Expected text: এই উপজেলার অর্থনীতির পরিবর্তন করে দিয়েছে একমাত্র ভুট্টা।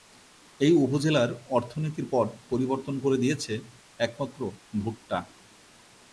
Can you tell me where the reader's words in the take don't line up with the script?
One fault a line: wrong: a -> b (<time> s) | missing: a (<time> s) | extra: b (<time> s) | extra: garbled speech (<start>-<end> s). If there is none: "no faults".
extra: পট (2.1 s)